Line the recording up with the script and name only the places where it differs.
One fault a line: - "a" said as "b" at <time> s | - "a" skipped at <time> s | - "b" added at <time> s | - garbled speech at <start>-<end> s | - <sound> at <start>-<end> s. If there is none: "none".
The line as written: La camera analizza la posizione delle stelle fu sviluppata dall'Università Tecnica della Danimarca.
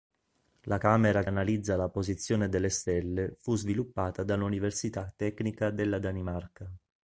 none